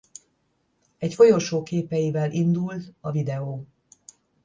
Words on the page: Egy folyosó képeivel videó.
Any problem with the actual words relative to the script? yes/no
yes